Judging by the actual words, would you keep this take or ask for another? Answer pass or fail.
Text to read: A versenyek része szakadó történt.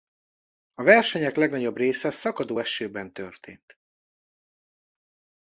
fail